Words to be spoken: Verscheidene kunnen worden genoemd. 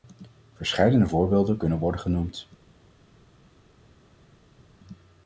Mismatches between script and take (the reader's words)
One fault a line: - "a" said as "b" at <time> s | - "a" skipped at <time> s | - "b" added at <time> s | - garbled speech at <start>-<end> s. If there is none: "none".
- "voorbeelden" added at 1.0 s